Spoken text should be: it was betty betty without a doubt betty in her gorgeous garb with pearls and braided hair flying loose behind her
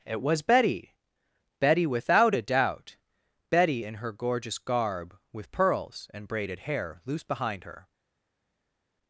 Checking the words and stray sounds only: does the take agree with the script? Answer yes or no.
no